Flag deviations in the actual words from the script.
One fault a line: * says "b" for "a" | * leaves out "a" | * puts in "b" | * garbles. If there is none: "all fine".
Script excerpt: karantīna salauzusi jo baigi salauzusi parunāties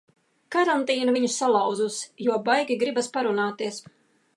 * puts in "viņu"
* says "gribas" for "salauzusi"